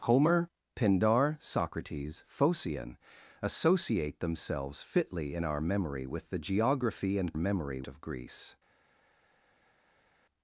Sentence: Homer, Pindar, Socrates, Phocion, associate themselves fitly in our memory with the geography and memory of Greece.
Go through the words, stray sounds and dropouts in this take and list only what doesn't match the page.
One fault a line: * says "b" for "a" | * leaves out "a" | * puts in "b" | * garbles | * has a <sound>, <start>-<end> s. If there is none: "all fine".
all fine